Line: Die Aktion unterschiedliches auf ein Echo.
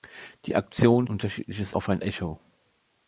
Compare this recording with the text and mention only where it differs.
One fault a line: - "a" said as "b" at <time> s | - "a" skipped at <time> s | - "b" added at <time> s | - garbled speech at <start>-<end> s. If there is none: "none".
none